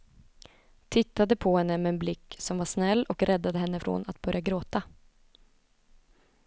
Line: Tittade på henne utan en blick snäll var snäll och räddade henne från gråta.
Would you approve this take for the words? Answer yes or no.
no